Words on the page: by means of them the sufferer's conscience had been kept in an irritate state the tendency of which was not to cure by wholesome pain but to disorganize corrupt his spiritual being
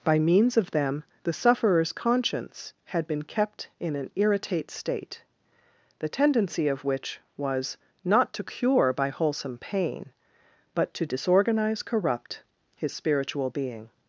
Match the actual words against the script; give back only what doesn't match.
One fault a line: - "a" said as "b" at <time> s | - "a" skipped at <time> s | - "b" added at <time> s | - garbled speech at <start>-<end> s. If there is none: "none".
none